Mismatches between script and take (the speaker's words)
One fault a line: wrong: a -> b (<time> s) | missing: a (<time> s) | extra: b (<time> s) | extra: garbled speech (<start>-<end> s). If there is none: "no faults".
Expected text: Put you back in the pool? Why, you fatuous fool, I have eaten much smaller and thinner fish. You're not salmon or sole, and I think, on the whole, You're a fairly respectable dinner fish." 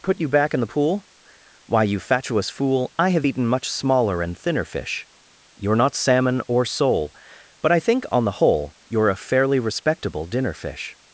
wrong: and -> but (7.6 s)